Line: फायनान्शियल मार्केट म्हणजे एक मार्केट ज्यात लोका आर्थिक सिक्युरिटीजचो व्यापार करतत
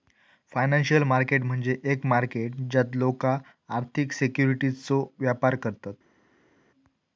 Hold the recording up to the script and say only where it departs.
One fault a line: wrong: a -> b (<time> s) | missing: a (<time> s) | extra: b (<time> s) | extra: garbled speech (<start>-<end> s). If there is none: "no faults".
no faults